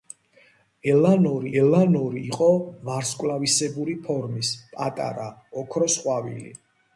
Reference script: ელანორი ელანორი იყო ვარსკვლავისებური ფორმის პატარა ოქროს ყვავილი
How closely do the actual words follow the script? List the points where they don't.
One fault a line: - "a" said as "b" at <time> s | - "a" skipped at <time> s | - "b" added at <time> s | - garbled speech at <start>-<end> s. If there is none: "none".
none